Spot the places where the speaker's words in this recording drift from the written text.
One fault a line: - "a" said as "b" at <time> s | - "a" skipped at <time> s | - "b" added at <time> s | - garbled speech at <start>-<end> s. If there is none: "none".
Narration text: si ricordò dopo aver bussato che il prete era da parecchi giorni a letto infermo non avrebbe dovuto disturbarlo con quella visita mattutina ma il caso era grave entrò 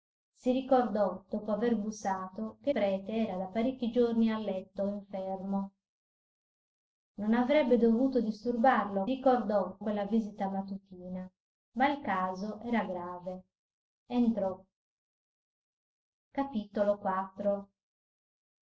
- "il" skipped at 2.7 s
- "con" said as "ricordò" at 9.1 s